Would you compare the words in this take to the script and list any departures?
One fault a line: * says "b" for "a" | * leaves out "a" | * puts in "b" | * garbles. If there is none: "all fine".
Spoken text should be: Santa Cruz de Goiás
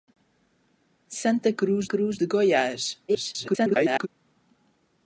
* puts in "Cruz"
* garbles